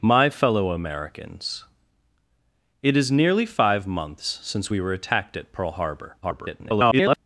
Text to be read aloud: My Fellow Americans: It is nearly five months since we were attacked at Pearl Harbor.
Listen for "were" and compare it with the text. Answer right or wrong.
right